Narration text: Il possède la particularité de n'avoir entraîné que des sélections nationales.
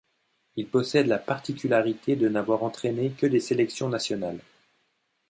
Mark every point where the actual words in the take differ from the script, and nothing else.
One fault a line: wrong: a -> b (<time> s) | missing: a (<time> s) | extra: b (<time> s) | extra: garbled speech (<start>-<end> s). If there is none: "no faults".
no faults